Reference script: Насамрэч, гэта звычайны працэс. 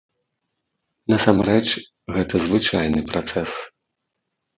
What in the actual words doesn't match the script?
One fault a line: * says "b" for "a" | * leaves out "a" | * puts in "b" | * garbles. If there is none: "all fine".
all fine